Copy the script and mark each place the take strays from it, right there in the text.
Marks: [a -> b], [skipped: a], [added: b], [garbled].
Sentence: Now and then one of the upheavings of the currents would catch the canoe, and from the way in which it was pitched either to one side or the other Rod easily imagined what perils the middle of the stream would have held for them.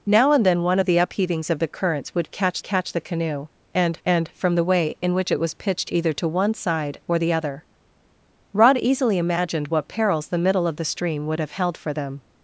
Now and then one of the upheavings of the currents would catch [added: catch] the canoe, and [added: and] from the way in which it was pitched either to one side or the other Rod easily imagined what perils the middle of the stream would have held for them.